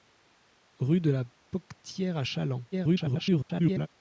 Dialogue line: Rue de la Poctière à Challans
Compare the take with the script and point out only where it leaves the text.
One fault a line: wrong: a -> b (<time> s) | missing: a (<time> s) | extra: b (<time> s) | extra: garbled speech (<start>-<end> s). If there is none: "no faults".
extra: garbled speech (2.7-3.9 s)